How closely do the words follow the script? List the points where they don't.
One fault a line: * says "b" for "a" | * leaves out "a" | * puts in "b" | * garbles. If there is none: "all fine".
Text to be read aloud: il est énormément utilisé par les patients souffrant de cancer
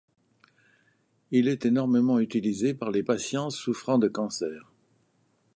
all fine